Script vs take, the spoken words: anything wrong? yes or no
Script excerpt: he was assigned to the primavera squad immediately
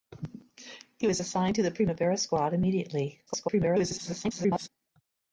yes